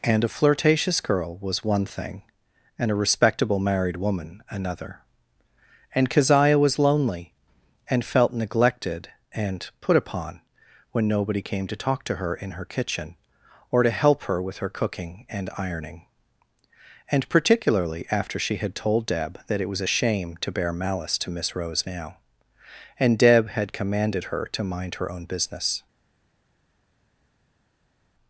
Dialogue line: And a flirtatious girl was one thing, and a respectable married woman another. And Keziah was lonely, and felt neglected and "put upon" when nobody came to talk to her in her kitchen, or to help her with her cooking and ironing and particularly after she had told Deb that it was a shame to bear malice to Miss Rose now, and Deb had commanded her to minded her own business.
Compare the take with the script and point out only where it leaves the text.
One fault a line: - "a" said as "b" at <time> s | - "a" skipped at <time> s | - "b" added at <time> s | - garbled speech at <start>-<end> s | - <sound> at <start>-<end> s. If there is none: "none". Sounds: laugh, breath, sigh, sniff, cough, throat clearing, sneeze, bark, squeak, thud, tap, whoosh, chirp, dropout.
- "minded" said as "mind" at 24.6 s